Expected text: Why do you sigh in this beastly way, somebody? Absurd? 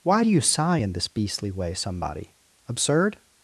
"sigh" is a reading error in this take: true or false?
false